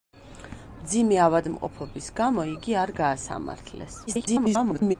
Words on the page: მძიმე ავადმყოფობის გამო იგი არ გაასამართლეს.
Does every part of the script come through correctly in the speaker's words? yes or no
no